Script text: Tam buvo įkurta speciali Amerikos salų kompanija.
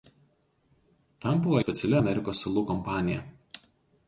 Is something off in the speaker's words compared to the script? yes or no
yes